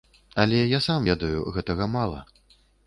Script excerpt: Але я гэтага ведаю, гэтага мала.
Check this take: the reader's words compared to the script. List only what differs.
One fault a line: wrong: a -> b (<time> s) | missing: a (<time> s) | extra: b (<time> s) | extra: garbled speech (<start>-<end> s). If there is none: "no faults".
wrong: гэтага -> сам (0.9 s)